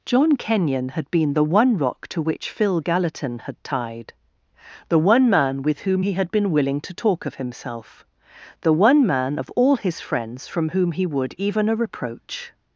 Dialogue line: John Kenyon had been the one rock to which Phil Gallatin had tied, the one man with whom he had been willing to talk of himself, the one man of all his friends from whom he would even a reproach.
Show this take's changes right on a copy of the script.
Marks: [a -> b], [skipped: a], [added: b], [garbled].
John Kenyon had been the one rock to which Phil Gallatin had tied, the one man with whom he had been willing to talk of himself, the one man of all his friends from whom he would even a reproach.